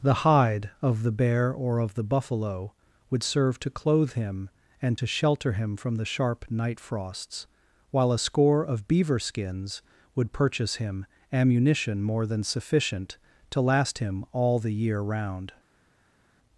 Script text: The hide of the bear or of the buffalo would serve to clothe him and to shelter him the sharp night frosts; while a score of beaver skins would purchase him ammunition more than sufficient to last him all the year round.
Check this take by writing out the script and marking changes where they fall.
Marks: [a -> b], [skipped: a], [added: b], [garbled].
The hide of the bear or of the buffalo would serve to clothe him and to shelter him [added: from] the sharp night frosts; while a score of beaver skins would purchase him ammunition more than sufficient to last him all the year round.